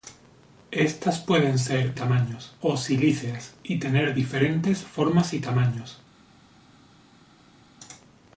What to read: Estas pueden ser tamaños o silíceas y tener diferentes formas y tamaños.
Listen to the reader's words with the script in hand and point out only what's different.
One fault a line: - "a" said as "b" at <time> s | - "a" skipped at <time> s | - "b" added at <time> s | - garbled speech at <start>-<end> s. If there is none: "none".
none